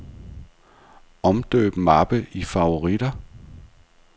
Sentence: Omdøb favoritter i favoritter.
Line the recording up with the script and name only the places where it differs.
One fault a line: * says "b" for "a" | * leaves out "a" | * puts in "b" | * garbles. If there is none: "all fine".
* says "mappe" for "favoritter"